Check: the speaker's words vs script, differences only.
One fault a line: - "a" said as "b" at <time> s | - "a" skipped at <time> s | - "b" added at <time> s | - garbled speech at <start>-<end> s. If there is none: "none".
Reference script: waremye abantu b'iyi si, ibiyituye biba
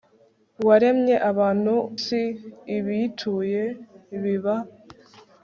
- "b'iyi" skipped at 1.7 s